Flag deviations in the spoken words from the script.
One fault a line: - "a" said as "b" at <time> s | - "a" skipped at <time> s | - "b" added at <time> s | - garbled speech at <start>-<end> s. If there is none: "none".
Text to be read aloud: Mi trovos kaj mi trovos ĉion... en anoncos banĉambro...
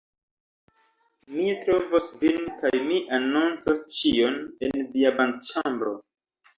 - "vin" added at 2.2 s
- "trovos" said as "anoncos" at 3.2 s
- "anoncos" said as "via" at 5.0 s